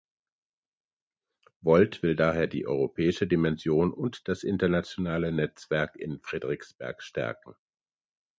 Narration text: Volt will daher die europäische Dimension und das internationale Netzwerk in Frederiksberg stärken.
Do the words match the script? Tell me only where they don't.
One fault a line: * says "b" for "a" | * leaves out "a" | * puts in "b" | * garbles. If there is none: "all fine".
all fine